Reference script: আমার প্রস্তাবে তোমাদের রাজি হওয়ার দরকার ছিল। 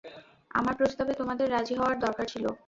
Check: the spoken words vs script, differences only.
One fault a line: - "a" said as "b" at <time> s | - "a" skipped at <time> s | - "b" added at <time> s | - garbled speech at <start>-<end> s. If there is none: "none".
none